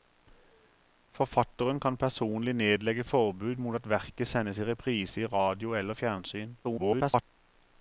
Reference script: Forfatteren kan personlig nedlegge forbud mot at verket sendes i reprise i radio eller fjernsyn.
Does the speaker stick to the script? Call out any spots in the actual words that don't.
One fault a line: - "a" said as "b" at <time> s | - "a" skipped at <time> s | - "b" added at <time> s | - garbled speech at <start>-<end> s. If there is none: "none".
- garbled speech at 6.6-7.2 s